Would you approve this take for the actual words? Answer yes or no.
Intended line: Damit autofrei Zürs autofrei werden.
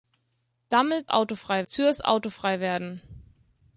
yes